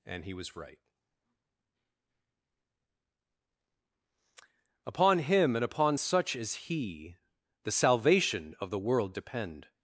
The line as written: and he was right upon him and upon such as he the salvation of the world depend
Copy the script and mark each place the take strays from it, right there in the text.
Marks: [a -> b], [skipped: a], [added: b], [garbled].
and he was right upon him and upon such as he the salvation of the world depend